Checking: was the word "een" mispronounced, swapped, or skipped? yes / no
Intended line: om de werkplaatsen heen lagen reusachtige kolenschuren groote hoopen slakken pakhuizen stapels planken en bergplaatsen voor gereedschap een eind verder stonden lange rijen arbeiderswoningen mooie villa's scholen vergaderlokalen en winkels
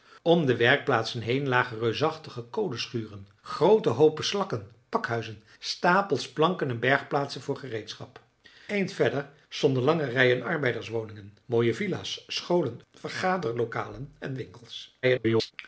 yes